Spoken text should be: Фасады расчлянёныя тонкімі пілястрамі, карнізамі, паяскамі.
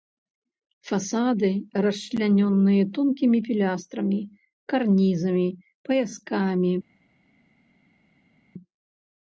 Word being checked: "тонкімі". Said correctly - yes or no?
yes